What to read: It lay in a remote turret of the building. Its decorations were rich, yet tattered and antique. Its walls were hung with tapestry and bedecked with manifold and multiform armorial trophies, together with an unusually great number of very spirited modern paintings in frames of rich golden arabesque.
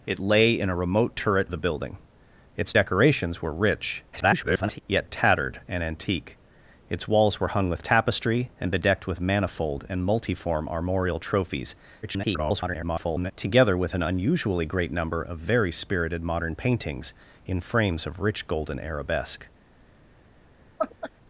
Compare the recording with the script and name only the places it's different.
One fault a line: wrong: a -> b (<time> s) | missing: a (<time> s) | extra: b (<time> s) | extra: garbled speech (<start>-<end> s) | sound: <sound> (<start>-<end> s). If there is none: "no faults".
missing: of (1.5 s)
extra: garbled speech (4.1-4.8 s)
extra: garbled speech (12.0-13.3 s)
sound: laugh (20.8-21.1 s)